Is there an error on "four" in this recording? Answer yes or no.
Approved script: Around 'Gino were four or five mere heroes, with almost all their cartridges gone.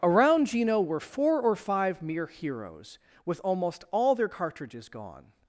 no